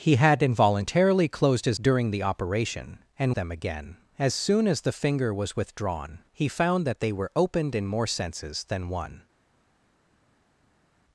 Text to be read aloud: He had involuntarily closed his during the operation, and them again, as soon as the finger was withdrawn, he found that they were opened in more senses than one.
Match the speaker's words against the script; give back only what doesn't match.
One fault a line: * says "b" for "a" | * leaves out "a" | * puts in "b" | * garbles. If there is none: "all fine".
all fine